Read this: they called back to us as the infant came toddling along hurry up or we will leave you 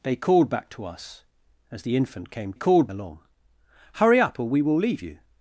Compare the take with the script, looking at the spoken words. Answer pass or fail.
fail